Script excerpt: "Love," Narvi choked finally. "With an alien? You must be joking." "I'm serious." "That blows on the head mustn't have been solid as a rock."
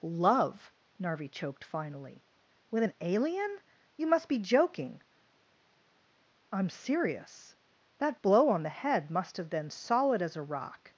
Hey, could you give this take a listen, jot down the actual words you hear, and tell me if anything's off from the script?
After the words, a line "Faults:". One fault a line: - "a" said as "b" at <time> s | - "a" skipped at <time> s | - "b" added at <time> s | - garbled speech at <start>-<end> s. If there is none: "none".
"Love," Narvi choked finally. "With an alien? You must be joking." "I'm serious." "That blow on the head must have been solid as a rock."
Faults:
- "blows" said as "blow" at 8.2 s
- "mustn't" said as "must" at 9.1 s